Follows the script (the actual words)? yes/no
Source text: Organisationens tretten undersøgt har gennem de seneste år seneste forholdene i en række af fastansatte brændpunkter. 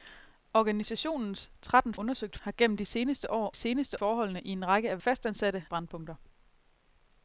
yes